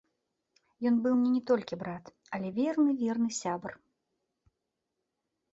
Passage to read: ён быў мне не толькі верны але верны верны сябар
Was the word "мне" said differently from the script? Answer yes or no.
no